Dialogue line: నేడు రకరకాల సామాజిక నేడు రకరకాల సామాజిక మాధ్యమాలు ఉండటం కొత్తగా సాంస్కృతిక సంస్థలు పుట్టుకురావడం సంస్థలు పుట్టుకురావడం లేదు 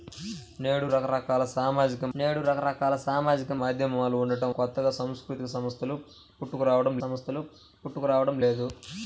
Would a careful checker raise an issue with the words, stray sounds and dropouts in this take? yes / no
no